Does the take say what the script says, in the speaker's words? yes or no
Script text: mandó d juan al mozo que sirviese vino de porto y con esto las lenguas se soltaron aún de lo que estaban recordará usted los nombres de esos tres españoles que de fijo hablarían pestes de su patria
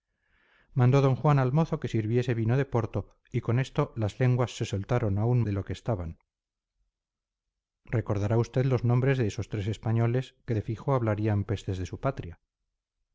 yes